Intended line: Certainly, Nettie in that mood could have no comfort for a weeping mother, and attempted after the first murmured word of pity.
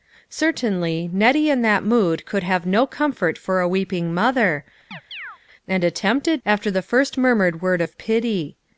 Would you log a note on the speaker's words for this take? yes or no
no